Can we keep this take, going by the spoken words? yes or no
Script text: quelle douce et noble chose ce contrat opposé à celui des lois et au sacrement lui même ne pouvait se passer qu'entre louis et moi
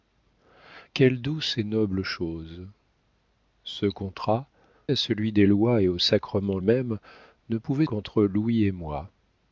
no